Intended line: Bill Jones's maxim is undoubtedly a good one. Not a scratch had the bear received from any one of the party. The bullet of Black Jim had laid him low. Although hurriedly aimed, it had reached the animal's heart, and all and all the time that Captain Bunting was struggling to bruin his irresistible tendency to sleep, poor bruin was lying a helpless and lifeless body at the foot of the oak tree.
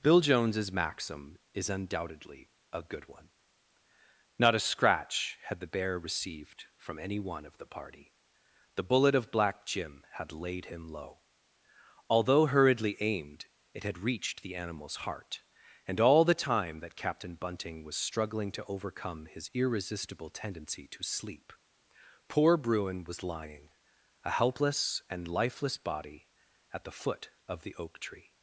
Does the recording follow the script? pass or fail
fail